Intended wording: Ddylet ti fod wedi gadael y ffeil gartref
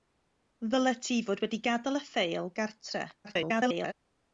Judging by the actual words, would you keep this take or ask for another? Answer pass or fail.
fail